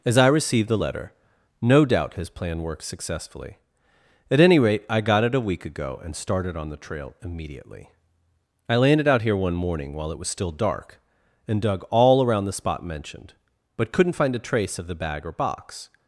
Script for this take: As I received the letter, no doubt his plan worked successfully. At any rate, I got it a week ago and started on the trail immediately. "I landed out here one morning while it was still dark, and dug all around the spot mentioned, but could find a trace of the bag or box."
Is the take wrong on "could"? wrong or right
wrong